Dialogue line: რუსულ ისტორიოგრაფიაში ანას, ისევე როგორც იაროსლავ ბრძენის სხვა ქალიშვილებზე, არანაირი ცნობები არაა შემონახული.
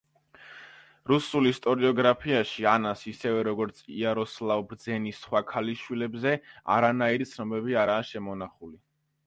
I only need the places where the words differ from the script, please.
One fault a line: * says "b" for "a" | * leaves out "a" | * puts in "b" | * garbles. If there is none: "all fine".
all fine